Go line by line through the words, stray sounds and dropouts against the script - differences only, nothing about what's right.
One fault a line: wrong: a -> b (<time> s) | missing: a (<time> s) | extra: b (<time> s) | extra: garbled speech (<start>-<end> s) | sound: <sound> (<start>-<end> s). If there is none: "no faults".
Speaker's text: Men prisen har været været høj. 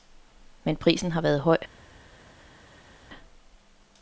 missing: været (1.4 s)